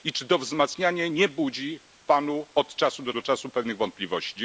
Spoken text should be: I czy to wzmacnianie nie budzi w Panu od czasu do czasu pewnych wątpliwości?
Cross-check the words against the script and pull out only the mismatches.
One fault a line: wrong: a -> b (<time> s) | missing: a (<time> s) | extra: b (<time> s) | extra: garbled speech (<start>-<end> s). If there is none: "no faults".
extra: do (3.1 s)